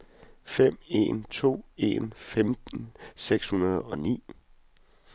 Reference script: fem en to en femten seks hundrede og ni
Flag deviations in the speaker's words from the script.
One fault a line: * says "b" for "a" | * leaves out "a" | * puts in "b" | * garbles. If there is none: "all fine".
all fine